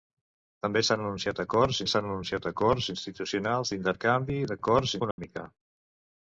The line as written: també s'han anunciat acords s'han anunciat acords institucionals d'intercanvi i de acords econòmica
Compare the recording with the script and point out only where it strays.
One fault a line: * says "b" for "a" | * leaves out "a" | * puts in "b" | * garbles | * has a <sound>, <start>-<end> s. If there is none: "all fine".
* has a dropout, 5.1-5.2 s